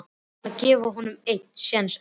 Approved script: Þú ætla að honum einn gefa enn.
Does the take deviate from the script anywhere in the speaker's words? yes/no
yes